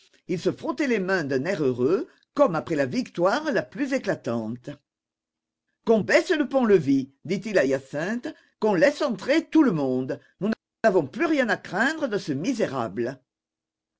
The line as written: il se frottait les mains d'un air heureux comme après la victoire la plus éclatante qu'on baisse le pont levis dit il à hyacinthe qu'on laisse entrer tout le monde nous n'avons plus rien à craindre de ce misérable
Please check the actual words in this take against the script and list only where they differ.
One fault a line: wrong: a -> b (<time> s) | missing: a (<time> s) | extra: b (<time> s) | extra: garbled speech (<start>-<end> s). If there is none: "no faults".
no faults